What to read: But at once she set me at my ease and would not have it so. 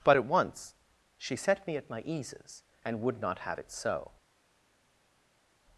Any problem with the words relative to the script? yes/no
yes